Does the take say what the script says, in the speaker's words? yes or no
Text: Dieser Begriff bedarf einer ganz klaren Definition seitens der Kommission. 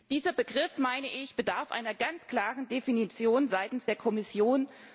yes